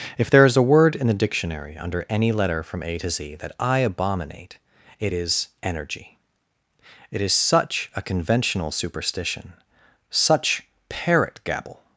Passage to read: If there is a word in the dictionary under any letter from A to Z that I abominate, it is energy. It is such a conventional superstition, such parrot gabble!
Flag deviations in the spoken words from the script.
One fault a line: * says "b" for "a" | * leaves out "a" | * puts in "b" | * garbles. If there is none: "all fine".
all fine